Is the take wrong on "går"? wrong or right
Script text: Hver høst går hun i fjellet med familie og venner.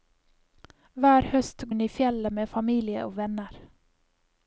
wrong